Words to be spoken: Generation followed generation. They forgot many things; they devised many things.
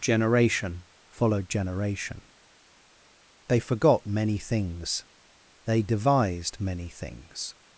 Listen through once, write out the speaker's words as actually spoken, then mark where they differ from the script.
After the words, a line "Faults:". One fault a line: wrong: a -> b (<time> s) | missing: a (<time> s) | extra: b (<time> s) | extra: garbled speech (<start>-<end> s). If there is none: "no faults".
Generation followed generation. They forgot many things; they devised many things.
Faults:
no faults